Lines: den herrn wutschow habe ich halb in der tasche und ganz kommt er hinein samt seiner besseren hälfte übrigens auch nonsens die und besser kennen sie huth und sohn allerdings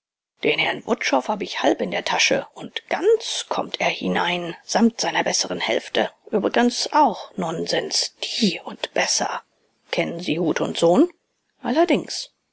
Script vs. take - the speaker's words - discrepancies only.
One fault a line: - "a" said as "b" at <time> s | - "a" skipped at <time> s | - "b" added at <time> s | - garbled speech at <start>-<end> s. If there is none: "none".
none